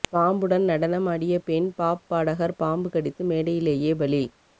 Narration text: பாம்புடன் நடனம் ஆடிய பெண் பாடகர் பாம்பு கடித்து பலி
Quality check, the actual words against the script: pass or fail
fail